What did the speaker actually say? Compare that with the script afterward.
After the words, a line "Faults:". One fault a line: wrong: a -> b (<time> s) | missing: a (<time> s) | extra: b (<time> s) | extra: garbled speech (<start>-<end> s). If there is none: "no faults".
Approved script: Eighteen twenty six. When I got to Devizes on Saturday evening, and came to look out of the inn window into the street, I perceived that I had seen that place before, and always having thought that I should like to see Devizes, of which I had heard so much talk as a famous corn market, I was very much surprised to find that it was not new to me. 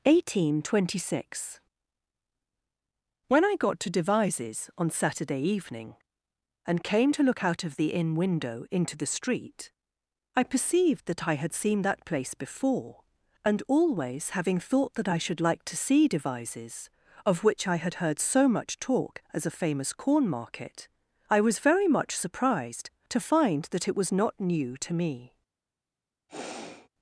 Eighteen twenty six. When I got to Devizes on Saturday evening, and came to look out of the inn window into the street, I perceived that I had seen that place before, and always having thought that I should like to see Devizes, of which I had heard so much talk as a famous corn market, I was very much surprised to find that it was not new to me.
Faults:
no faults